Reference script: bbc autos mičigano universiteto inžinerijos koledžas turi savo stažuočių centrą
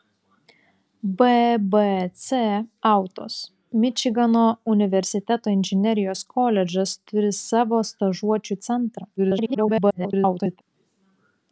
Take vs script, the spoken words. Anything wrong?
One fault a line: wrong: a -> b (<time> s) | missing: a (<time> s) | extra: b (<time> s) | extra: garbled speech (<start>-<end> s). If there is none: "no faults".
extra: garbled speech (9.2-10.6 s)